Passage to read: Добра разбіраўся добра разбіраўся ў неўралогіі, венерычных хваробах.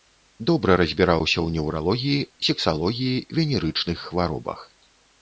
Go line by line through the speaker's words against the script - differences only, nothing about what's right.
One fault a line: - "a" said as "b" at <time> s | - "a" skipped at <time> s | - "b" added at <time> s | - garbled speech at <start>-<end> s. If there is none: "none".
- "добра разбіраўся" skipped at 1.3 s
- "сексалогіі" added at 2.5 s